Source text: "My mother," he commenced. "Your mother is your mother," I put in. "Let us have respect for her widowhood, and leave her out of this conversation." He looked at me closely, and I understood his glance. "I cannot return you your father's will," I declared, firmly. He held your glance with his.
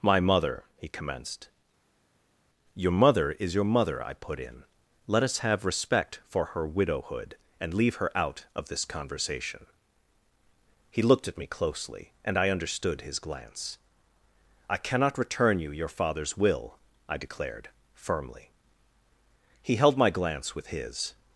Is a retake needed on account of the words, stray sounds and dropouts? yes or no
yes